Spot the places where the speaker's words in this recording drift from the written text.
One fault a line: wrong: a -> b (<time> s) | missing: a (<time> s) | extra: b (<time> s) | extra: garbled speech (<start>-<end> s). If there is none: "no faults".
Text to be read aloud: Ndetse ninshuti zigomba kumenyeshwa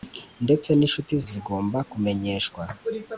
no faults